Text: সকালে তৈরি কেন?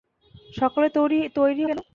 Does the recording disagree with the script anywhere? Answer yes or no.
no